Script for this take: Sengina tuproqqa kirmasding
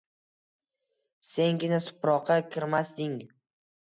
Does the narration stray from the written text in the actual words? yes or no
no